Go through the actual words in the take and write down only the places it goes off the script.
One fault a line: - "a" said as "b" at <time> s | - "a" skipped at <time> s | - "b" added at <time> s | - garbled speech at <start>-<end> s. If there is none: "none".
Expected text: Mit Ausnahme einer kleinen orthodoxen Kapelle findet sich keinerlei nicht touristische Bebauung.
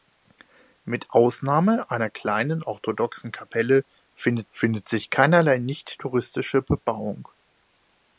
- "findet" added at 4.5 s